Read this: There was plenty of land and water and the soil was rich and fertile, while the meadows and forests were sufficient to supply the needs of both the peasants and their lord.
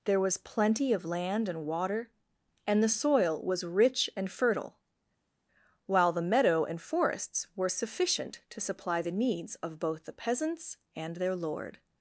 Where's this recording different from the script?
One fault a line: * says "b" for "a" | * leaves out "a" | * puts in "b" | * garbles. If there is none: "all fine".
* says "meadow" for "meadows"